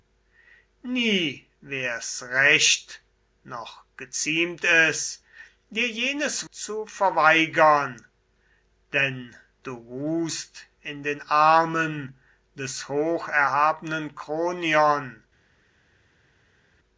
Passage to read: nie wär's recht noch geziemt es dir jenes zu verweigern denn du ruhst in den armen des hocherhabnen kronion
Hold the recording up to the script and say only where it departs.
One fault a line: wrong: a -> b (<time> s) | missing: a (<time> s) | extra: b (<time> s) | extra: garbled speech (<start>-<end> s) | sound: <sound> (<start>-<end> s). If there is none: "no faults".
no faults